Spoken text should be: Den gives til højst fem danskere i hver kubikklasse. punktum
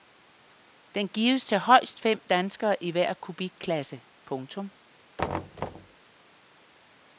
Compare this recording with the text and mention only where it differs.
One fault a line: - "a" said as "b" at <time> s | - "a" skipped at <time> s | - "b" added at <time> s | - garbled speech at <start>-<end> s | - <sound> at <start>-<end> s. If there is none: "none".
- thud at 5.2-6.0 s